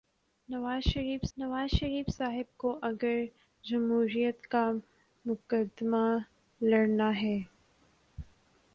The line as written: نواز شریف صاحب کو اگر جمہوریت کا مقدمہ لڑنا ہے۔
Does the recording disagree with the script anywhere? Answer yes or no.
yes